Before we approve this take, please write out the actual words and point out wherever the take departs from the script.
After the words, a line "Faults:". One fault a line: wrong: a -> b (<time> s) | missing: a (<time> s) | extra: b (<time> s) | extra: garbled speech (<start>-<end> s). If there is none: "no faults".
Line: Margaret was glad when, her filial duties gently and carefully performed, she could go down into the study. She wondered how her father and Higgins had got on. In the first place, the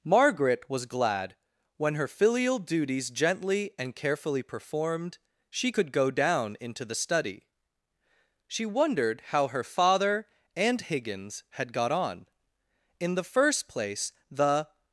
Margaret was glad when, her filial duties gently and carefully performed, she could go down into the study. She wondered how her father and Higgins had got on. In the first place, the
Faults:
no faults